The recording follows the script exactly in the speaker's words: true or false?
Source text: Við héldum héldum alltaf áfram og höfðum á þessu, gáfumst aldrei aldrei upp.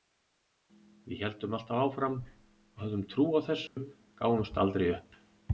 false